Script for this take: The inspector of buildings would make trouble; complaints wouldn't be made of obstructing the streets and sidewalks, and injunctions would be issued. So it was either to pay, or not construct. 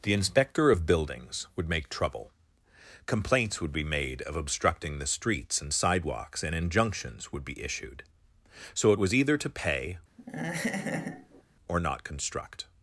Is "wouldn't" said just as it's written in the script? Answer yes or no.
no